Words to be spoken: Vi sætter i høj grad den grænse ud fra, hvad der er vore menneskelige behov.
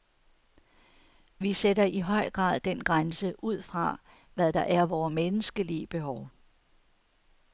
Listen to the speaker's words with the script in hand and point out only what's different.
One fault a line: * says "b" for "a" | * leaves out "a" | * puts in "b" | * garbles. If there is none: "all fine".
all fine